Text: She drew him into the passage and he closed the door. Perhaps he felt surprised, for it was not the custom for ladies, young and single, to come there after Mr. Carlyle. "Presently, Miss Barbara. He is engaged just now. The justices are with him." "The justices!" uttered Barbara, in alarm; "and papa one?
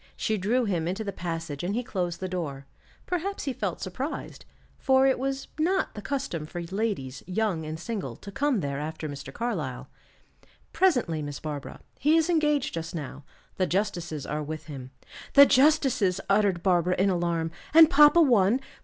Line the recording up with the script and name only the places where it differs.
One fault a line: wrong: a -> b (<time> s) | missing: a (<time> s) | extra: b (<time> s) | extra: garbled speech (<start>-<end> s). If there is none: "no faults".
no faults